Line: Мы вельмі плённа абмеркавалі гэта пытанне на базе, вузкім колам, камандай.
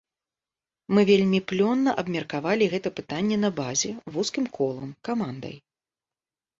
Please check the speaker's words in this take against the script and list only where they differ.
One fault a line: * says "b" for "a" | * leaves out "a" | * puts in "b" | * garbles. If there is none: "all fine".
all fine